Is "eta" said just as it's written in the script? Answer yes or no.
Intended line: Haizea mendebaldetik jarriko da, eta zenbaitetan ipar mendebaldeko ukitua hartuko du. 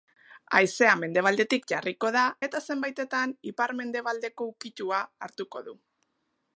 yes